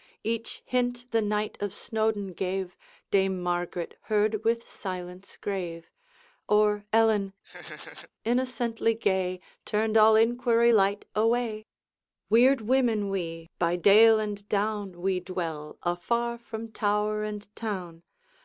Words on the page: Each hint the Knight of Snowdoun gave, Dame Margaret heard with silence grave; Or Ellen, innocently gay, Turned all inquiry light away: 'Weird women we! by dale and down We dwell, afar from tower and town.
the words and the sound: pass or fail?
fail